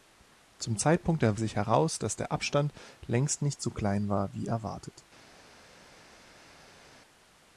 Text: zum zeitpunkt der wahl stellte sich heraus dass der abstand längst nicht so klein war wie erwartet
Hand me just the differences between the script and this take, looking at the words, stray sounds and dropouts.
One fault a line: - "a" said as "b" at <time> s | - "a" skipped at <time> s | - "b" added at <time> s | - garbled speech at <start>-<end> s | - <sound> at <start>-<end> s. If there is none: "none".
- "wahl stellte" skipped at 1.4 s